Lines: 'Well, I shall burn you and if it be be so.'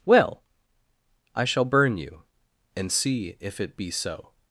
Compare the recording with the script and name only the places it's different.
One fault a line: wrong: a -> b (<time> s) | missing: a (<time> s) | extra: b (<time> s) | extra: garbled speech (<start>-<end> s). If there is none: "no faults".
extra: see (2.9 s)
missing: be (3.9 s)